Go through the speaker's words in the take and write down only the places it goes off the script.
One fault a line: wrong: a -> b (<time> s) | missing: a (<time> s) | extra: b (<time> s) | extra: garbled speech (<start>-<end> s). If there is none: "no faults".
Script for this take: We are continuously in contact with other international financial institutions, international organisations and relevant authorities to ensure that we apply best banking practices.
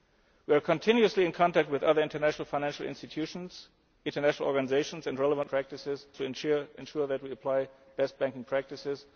wrong: authorities -> practices (5.4 s)